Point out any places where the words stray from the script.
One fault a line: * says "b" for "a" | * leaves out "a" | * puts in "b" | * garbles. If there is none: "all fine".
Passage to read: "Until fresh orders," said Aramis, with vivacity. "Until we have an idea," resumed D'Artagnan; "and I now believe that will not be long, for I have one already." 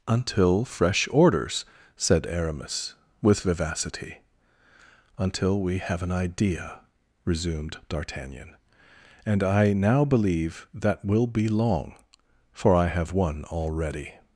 * leaves out "not"